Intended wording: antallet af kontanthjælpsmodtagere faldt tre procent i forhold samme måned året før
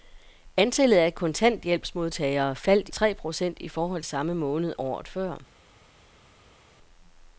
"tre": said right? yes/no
yes